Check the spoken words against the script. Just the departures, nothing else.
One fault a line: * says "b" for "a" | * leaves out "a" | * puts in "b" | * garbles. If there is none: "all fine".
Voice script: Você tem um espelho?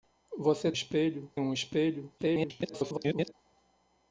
* says "espelho" for "tem"
* garbles